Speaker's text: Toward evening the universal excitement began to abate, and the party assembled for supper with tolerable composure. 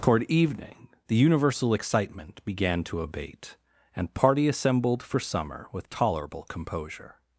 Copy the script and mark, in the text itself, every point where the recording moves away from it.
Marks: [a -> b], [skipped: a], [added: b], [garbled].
Toward evening the universal excitement began to abate, and [skipped: the] party assembled for [supper -> summer] with tolerable composure.